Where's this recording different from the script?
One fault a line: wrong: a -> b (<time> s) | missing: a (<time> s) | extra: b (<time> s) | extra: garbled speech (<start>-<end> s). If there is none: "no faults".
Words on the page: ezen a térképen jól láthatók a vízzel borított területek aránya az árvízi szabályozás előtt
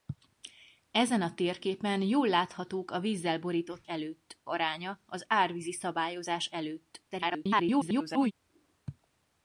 wrong: területek -> előtt (3.8 s)
extra: garbled speech (7.1-8.3 s)